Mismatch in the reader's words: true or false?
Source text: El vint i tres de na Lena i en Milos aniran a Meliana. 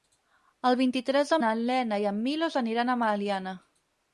false